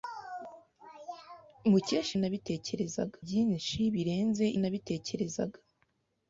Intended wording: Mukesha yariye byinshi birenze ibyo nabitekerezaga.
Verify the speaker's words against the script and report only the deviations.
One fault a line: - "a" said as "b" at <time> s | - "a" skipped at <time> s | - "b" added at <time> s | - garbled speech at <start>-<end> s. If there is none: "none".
- "yariye" said as "nabitekerezaga" at 2.2 s
- "ibyo" skipped at 4.4 s